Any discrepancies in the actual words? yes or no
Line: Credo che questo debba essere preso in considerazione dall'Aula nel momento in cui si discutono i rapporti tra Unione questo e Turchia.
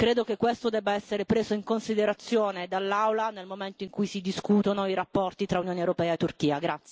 yes